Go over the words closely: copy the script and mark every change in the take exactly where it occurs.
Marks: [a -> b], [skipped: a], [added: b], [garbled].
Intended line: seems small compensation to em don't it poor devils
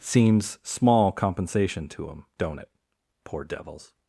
seems small compensation to em don't it poor devils